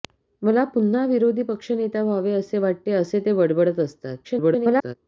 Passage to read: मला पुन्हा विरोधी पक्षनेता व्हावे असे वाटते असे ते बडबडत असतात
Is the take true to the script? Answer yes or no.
no